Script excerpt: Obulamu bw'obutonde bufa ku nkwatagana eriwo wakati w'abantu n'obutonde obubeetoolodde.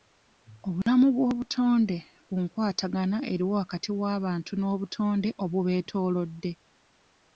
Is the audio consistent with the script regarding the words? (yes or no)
no